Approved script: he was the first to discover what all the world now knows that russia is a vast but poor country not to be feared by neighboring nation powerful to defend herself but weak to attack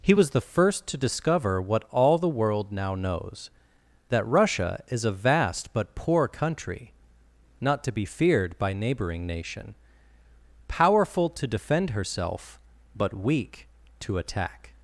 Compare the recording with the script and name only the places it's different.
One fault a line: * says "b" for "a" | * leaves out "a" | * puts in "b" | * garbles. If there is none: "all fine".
all fine